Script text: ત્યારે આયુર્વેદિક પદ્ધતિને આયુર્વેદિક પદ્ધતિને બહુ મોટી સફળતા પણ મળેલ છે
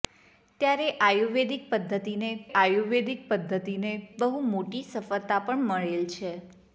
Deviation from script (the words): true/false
false